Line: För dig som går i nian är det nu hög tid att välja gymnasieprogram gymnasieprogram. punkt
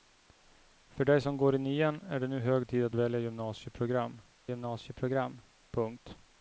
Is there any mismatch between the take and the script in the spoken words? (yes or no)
no